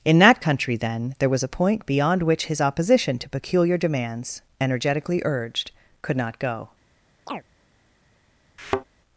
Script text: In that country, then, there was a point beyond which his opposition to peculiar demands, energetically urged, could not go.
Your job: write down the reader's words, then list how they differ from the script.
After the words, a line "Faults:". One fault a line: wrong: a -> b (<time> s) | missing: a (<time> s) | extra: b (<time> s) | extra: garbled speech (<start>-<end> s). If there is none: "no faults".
In that country, then, there was a point beyond which his opposition to peculiar demands, energetically urged, could not go.
Faults:
no faults